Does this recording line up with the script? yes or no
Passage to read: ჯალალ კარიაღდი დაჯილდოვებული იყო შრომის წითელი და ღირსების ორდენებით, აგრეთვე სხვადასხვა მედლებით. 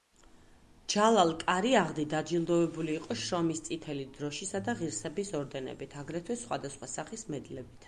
no